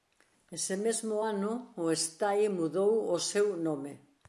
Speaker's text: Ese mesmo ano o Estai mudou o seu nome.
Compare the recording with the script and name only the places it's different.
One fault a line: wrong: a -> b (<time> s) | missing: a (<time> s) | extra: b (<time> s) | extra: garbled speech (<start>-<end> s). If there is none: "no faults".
no faults